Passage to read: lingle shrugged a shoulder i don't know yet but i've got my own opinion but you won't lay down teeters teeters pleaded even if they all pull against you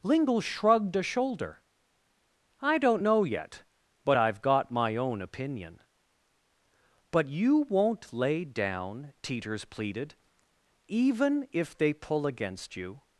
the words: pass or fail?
fail